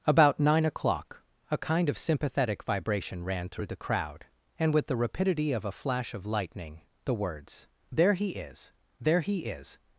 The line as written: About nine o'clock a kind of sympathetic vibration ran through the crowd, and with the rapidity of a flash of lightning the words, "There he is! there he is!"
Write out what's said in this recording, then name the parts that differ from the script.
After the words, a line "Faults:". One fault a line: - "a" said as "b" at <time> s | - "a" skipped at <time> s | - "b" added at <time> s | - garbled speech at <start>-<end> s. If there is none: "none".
About nine o'clock a kind of sympathetic vibration ran through the crowd, and with the rapidity of a flash of lightning the words, "There he is! there he is!"
Faults:
none